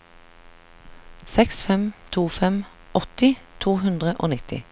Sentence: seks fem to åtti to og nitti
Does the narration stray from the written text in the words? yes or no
yes